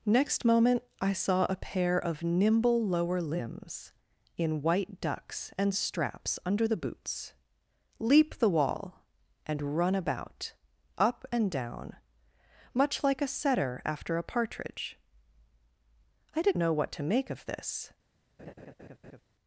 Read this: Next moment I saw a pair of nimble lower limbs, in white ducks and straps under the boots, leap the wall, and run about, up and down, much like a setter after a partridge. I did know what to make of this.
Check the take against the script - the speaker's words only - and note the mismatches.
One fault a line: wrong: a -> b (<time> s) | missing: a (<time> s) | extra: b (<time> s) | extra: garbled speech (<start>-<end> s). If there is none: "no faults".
no faults